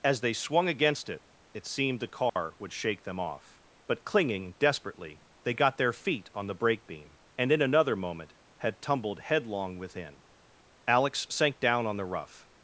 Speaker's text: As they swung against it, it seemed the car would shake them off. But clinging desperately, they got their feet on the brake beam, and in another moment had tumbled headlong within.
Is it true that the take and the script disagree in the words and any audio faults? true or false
true